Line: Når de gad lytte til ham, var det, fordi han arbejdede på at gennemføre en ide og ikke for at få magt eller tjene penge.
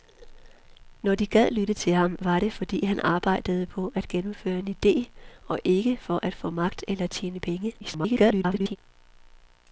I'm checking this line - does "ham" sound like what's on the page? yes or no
yes